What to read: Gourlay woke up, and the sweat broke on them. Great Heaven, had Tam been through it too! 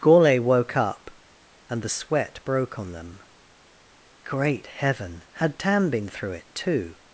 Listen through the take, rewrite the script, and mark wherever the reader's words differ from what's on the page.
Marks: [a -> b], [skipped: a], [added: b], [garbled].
Gourlay woke up, and the sweat broke on them. Great Heaven, had Tam been through it too!